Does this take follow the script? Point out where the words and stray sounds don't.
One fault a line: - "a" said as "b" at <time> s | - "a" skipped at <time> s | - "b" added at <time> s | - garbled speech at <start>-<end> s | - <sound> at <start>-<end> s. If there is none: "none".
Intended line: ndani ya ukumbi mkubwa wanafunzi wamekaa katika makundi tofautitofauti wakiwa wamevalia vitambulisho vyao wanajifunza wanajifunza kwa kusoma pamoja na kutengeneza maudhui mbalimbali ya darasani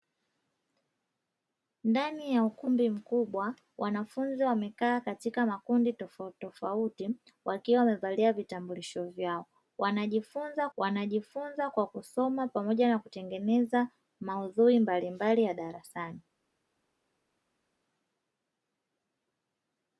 none